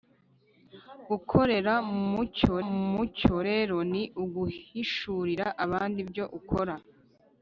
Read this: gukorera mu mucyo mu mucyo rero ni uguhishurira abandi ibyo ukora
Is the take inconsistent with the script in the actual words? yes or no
no